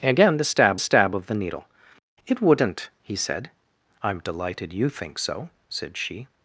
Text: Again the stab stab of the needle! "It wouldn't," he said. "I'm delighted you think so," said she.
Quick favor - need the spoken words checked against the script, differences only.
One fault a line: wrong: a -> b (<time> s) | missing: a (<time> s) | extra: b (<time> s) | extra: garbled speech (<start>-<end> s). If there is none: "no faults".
no faults